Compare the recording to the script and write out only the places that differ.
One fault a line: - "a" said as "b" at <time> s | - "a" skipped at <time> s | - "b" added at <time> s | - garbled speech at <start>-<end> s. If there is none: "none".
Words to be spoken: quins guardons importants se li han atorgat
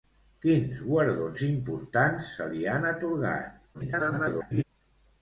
- garbled speech at 3.7-4.6 s